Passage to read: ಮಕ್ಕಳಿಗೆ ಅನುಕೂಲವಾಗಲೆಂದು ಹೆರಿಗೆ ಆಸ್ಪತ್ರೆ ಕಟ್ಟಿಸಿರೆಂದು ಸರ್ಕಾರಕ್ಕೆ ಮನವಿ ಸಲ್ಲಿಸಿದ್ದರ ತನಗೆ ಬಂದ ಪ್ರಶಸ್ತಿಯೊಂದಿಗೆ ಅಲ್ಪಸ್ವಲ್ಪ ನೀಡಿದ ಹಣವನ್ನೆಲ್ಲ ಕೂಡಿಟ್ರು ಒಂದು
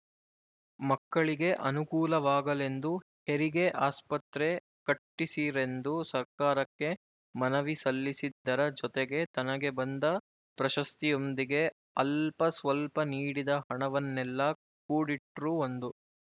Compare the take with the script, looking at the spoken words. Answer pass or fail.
fail